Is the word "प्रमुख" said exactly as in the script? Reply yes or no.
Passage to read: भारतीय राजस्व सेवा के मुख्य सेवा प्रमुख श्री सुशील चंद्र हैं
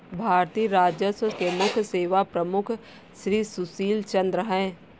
yes